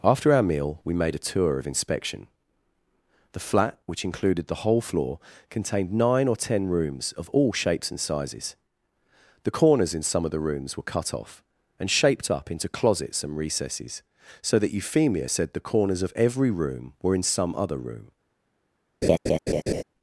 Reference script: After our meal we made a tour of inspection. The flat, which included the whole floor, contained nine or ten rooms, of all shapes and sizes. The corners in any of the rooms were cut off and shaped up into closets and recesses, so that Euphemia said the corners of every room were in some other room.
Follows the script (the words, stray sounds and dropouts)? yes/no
no